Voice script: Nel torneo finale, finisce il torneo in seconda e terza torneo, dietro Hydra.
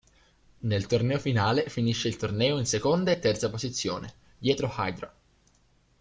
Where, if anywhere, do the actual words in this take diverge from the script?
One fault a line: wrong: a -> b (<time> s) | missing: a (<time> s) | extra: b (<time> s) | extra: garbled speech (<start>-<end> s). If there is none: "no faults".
wrong: torneo -> posizione (3.5 s)